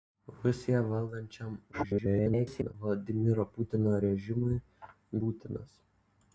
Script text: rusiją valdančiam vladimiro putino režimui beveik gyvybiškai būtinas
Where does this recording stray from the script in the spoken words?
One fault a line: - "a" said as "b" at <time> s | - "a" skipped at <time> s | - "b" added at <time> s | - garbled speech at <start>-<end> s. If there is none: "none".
- garbled speech at 1.7-2.7 s
- "beveik gyvybiškai" skipped at 4.6 s